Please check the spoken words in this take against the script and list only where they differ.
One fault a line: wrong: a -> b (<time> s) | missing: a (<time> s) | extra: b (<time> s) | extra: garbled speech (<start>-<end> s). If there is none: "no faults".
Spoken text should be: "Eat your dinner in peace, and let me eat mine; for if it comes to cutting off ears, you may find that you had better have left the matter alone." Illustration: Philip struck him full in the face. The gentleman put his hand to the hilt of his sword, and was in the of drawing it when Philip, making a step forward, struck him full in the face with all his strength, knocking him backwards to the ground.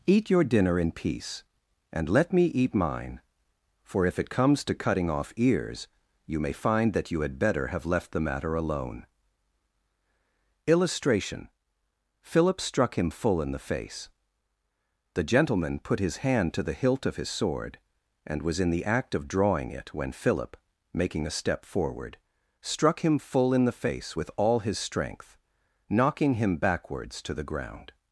extra: act (18.9 s)